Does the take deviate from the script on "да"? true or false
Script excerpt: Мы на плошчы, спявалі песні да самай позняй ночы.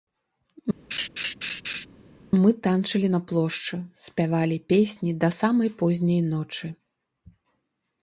false